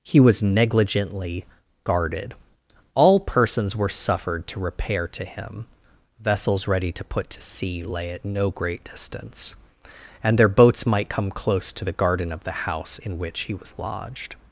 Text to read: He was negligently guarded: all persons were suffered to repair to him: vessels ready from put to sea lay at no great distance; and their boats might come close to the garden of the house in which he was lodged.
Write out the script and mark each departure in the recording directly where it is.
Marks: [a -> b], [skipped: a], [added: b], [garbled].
He was negligently guarded: all persons were suffered to repair to him: vessels ready [from -> to] put to sea lay at no great distance; and their boats might come close to the garden of the house in which he was lodged.